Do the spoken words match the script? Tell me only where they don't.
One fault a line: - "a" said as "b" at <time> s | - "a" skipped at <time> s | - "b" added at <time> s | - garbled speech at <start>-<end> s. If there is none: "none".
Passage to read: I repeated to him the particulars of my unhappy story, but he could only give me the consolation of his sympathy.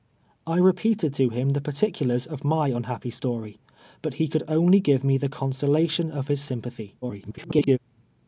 - garbled speech at 7.0-7.8 s